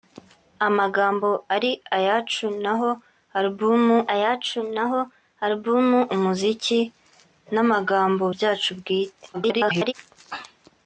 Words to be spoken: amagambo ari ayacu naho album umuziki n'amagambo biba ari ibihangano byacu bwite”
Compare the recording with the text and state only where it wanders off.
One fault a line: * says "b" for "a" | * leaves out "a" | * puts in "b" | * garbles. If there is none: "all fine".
* says "ayacu naho album umuziki n'amagambo" for "umuziki n'amagambo biba ari ibihangano"
* garbles